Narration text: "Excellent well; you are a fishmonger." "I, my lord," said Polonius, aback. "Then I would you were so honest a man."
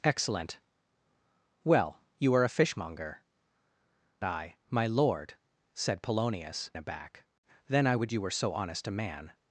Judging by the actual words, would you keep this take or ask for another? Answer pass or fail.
pass